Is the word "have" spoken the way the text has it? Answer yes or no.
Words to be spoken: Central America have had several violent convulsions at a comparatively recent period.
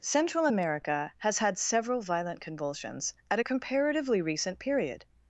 no